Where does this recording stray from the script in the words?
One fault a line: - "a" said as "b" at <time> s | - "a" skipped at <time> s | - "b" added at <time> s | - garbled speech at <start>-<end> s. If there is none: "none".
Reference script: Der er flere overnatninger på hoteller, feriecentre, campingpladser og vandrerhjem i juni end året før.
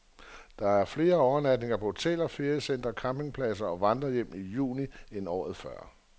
none